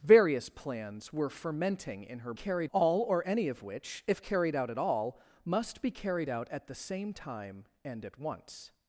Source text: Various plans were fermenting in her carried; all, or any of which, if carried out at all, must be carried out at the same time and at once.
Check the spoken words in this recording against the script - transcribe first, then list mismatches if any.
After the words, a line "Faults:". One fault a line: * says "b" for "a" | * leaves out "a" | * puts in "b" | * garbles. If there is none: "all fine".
Various plans were fermenting in her carried; all, or any of which, if carried out at all, must be carried out at the same time and at once.
Faults:
all fine